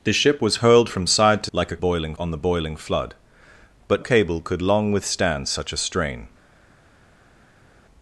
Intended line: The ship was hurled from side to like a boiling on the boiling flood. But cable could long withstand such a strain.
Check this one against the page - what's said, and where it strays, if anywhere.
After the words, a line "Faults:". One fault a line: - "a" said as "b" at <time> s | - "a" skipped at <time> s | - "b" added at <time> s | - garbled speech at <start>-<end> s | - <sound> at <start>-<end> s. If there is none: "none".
The ship was hurled from side to like a boiling on the boiling flood. But cable could long withstand such a strain.
Faults:
none